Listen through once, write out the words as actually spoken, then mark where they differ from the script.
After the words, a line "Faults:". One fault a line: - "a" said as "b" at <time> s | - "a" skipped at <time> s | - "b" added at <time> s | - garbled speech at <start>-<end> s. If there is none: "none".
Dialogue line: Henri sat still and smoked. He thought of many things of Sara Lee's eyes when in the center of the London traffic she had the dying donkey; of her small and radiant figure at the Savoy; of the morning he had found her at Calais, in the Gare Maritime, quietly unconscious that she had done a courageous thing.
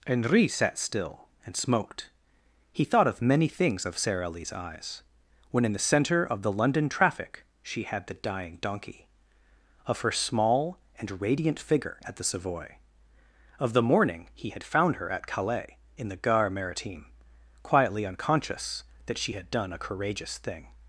Henri sat still and smoked. He thought of many things of Sara Lee's eyes when in the center of the London traffic she had the dying donkey; of her small and radiant figure at the Savoy; of the morning he had found her at Calais, in the Gare Maritime, quietly unconscious that she had done a courageous thing.
Faults:
none